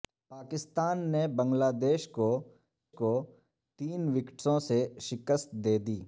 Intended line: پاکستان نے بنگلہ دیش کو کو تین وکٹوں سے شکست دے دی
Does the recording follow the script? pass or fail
pass